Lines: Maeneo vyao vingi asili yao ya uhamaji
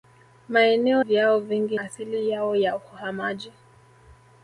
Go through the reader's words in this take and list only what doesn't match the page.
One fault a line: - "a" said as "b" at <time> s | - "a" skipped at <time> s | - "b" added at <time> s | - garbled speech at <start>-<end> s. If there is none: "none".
none